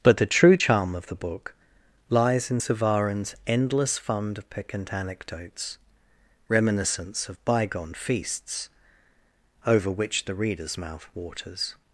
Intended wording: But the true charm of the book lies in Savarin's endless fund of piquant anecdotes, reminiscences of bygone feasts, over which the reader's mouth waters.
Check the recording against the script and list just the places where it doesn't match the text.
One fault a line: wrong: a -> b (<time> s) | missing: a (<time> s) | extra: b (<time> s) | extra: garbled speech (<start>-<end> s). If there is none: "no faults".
wrong: reminiscences -> reminiscence (6.5 s)